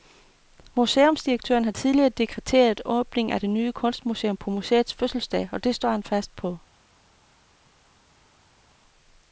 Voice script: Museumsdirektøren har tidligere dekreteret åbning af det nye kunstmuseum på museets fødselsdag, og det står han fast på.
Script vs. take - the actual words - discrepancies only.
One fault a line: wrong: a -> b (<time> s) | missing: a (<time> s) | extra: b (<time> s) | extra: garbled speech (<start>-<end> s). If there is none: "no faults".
no faults